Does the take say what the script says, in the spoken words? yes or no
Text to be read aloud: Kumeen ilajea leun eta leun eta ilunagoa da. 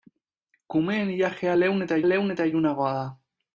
yes